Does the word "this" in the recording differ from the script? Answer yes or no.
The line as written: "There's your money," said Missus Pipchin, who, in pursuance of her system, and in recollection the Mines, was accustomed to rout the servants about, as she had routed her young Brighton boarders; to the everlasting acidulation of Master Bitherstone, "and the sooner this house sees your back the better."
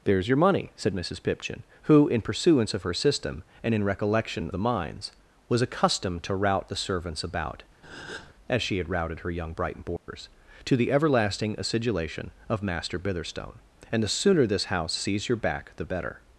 no